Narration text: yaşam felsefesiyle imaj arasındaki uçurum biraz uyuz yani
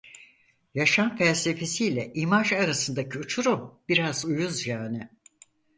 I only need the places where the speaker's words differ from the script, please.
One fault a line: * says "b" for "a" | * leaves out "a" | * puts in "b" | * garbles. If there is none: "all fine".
all fine